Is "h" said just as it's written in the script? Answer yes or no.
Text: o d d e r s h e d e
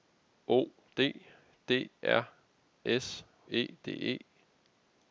no